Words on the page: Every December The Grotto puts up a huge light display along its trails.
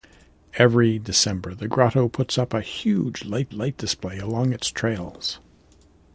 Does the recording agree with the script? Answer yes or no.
no